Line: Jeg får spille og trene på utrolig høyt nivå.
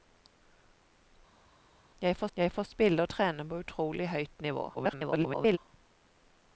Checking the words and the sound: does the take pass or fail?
fail